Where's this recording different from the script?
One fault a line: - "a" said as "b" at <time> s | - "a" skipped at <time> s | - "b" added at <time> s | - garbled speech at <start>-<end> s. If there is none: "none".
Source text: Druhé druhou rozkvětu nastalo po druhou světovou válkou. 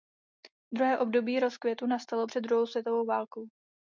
- "druhou" said as "období" at 1.0 s
- "po" said as "před" at 2.2 s